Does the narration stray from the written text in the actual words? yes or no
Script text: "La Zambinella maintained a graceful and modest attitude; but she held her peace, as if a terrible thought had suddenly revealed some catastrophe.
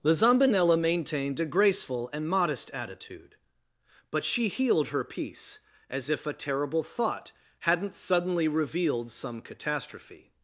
yes